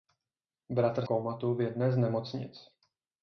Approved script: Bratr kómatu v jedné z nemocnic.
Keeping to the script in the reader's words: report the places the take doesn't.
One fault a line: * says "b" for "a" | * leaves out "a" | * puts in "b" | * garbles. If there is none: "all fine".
all fine